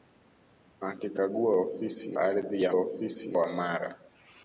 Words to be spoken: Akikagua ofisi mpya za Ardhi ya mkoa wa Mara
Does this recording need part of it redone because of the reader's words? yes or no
yes